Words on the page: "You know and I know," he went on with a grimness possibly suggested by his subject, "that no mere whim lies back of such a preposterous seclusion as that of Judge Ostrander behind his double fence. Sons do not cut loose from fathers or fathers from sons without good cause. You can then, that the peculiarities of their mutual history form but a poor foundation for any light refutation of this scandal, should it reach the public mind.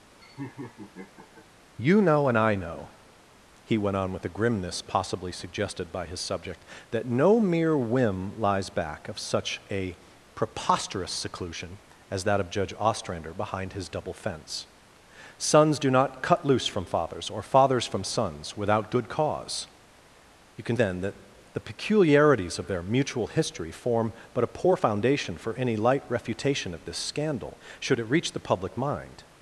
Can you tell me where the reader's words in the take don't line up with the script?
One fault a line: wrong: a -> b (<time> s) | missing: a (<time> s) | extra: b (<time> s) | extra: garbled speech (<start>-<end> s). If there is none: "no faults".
no faults